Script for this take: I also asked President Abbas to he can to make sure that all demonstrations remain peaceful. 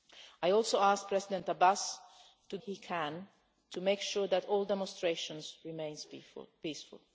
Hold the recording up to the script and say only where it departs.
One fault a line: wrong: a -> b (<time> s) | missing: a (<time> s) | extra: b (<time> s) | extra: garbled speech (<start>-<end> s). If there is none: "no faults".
no faults